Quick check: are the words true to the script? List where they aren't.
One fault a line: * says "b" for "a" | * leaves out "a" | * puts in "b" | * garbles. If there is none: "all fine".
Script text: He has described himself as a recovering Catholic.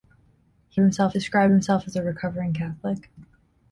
* says "himself" for "has"